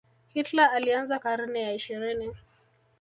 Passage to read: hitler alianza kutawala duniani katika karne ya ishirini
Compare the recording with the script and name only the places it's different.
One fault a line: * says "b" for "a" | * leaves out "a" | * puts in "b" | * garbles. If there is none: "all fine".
* leaves out "kutawala duniani katika"